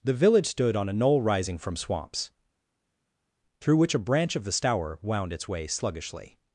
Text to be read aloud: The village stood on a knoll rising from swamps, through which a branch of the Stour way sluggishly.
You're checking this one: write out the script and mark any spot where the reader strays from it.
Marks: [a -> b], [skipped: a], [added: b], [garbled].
The village stood on a knoll rising from swamps, through which a branch of the Stour [added: wound its] way sluggishly.